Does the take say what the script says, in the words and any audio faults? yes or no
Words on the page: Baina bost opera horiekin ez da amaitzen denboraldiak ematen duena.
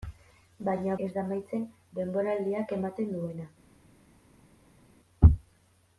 no